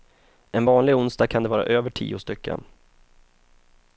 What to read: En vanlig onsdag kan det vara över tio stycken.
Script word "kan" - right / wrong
right